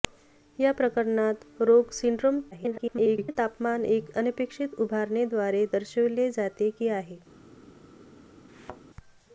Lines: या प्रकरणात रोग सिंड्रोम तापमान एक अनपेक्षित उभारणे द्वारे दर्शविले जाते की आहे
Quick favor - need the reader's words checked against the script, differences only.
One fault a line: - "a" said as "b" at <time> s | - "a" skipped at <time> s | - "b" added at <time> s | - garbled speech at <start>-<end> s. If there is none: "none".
- garbled speech at 2.5-3.4 s